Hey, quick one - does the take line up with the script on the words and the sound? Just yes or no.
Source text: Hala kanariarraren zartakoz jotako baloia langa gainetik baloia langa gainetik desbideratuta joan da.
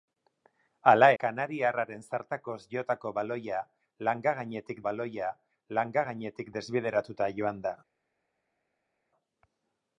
yes